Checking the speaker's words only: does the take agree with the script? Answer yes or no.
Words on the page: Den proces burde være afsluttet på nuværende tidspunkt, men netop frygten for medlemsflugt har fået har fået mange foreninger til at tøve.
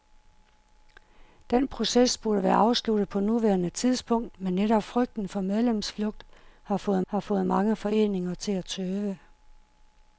yes